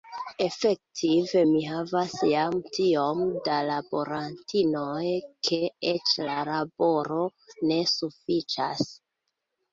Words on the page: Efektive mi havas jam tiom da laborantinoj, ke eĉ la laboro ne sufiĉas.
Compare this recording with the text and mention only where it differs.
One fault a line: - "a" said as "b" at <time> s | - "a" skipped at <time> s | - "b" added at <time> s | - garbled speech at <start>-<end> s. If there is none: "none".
none